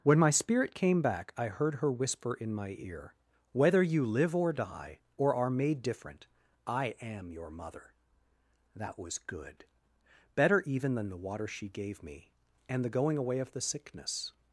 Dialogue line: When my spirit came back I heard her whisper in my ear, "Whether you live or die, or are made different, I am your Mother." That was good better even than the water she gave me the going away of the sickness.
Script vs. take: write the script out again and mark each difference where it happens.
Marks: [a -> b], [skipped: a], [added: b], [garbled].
When my spirit came back I heard her whisper in my ear, "Whether you live or die, or are made different, I am your Mother." That was good better even than the water she gave me [added: and] the going away of the sickness.